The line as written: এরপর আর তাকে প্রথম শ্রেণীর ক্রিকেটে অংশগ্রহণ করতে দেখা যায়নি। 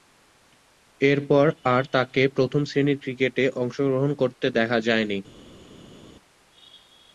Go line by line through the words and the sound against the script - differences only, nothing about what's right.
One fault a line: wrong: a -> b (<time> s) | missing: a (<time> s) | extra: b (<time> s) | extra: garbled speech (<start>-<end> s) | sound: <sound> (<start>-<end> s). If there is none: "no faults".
no faults